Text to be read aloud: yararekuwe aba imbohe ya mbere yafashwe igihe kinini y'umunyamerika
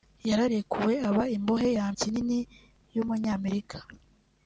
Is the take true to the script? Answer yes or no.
no